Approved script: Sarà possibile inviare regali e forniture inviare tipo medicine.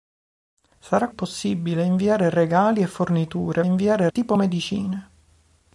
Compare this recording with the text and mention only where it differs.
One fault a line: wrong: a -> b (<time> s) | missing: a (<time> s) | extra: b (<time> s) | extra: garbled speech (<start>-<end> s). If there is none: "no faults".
no faults